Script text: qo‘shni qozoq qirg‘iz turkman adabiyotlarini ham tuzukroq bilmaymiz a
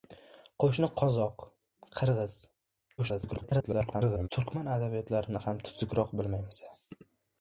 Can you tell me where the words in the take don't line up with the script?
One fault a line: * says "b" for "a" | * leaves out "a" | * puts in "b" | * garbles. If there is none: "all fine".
* garbles